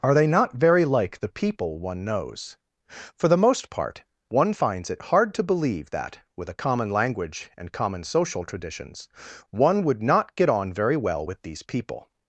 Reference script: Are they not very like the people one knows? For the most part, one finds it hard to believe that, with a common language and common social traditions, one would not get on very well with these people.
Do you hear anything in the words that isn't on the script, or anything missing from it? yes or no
no